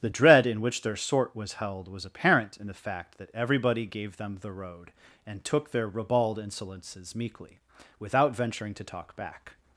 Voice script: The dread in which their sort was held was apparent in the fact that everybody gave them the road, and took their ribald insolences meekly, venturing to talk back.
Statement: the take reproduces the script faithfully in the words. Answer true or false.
false